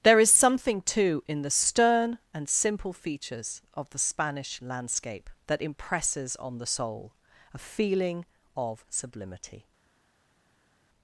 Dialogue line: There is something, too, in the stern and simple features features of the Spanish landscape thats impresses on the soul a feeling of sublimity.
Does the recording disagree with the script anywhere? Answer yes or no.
yes